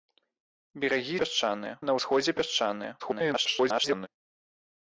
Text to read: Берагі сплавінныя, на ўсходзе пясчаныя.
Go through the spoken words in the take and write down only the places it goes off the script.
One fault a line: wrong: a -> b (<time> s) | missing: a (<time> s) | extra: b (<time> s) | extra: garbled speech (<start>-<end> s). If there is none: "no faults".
wrong: сплавінныя -> пясчаныя (1.2 s)
extra: garbled speech (3.0-4.1 s)